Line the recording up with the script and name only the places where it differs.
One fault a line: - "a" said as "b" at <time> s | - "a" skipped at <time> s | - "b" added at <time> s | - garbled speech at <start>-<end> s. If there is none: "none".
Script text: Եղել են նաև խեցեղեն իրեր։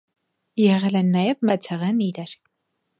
none